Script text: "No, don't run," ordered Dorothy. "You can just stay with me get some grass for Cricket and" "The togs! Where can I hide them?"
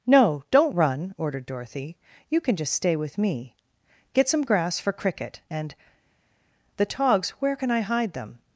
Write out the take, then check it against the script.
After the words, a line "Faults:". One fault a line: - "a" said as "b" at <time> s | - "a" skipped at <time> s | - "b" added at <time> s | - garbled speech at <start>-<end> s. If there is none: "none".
"No, don't run," ordered Dorothy. "You can just stay with me get some grass for Cricket and" "The togs! Where can I hide them?"
Faults:
none